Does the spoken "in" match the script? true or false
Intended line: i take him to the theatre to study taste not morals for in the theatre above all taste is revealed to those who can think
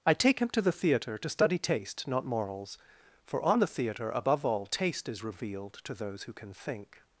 false